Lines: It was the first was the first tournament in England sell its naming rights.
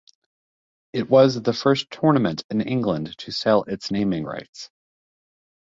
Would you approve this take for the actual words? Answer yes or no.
no